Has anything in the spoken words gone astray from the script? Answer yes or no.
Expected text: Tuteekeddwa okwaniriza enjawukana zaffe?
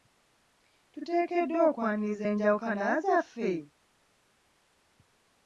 no